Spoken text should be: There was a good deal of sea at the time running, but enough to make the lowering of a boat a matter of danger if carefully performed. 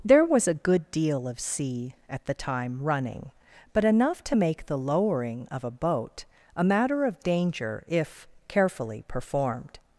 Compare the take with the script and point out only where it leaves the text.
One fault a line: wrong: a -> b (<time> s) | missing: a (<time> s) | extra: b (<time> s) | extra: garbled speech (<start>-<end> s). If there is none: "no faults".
no faults